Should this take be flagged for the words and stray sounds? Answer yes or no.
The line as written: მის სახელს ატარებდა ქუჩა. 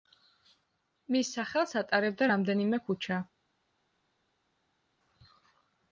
yes